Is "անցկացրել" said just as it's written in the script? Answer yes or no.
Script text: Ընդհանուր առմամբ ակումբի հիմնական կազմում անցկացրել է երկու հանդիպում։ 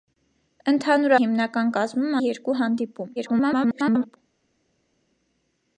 no